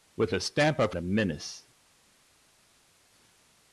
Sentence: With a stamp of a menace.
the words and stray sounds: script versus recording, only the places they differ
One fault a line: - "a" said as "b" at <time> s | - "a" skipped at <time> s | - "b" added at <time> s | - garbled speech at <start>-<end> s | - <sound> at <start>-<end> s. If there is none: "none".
none